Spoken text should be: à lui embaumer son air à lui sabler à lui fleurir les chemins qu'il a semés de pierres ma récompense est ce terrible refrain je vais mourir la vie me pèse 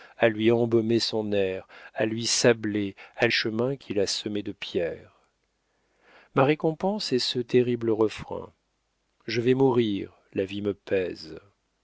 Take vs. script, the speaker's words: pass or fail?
fail